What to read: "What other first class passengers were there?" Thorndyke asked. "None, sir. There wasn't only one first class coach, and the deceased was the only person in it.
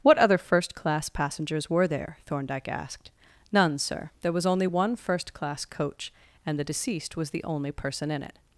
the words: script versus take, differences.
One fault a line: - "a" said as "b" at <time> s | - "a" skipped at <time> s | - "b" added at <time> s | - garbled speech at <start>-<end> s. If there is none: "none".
- "wasn't" said as "was" at 4.3 s